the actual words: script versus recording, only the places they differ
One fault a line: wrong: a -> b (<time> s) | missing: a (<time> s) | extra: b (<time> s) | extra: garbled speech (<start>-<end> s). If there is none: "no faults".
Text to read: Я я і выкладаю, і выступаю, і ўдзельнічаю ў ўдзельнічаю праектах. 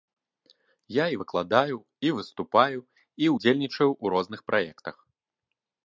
missing: я (1.1 s)
wrong: ўдзельнічаю -> розных (4.1 s)